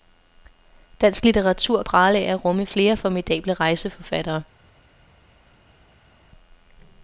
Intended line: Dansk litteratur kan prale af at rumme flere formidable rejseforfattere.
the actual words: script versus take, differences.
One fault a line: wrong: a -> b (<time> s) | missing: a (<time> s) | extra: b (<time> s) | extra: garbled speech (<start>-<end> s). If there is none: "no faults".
missing: kan (1.8 s)